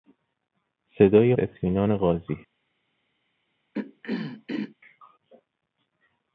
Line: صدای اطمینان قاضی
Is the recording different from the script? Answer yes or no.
no